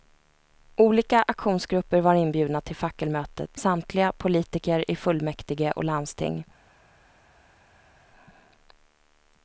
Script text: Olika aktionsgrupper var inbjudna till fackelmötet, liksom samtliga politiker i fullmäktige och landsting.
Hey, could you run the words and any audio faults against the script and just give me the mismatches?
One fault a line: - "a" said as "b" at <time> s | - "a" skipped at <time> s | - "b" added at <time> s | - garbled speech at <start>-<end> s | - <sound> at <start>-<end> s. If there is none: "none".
- "liksom" skipped at 3.6 s